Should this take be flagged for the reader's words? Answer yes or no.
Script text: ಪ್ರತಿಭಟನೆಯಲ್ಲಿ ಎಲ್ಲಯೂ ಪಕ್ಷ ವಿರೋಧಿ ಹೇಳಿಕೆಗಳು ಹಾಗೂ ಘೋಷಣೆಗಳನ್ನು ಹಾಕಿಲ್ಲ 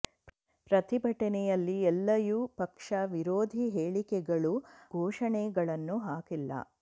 yes